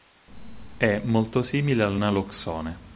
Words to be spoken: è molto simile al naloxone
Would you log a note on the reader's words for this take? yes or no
no